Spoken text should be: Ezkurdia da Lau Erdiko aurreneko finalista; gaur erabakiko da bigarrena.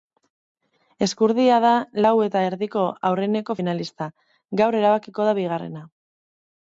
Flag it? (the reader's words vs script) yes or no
yes